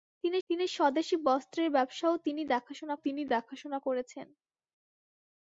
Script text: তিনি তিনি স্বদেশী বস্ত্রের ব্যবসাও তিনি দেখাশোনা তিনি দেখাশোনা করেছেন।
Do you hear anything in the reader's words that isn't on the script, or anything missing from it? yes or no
no